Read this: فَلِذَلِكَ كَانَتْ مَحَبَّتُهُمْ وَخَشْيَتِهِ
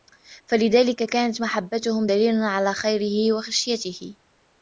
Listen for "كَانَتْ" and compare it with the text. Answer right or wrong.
right